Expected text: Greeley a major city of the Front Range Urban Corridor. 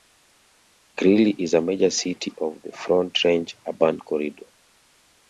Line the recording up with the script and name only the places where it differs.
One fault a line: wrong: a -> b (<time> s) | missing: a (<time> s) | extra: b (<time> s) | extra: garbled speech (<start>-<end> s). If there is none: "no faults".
extra: is (1.4 s)